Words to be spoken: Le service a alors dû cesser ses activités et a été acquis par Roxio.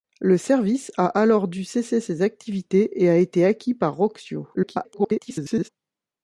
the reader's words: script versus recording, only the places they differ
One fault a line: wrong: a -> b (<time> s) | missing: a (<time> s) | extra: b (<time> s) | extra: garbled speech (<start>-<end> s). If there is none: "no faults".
extra: garbled speech (4.5-5.7 s)